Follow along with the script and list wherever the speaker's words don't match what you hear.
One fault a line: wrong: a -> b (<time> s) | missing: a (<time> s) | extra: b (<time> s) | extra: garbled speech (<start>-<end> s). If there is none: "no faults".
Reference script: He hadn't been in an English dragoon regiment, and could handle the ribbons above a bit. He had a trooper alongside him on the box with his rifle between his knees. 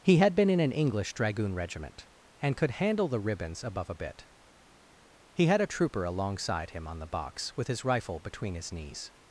wrong: hadn't -> had (0.2 s)